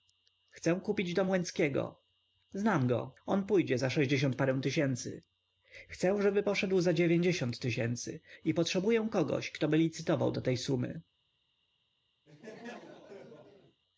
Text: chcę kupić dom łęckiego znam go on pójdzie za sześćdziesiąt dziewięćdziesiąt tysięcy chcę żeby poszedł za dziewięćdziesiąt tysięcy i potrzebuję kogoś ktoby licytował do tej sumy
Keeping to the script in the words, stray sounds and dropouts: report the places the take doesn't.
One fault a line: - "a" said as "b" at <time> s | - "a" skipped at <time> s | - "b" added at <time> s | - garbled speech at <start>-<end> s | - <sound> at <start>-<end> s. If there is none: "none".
- "dziewięćdziesiąt" said as "parę" at 4.4 s
- laugh at 12.3-13.8 s